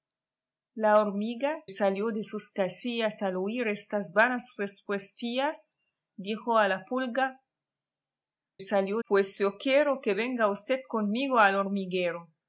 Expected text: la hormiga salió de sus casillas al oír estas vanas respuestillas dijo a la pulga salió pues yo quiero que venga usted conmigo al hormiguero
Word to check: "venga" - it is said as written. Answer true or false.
true